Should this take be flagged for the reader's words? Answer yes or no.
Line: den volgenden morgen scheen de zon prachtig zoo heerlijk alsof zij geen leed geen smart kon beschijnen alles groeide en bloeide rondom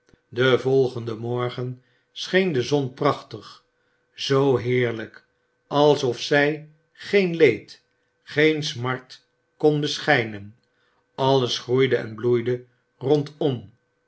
no